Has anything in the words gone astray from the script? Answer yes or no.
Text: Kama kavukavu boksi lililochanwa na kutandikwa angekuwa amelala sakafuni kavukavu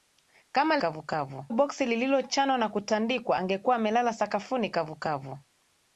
no